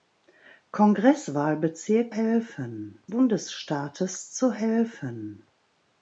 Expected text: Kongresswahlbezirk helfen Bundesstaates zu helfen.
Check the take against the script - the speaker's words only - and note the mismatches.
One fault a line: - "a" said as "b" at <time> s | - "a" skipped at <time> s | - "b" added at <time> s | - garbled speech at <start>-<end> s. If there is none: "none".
none